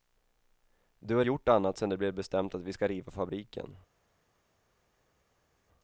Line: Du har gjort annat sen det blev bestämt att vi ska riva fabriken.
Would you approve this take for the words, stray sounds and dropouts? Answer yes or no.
yes